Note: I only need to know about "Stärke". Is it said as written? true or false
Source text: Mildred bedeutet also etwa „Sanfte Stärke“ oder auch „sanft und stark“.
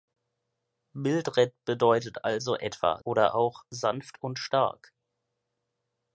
false